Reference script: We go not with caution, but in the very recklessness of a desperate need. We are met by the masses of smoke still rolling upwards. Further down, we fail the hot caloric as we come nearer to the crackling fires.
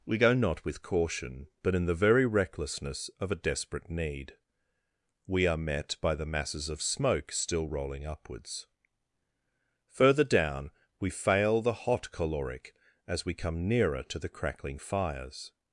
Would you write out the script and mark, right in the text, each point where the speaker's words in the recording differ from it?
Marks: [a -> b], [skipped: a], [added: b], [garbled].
We go not with caution, but in the very recklessness of a desperate need. We are met by the masses of smoke still rolling upwards. Further down, we fail the hot caloric as we come nearer to the crackling fires.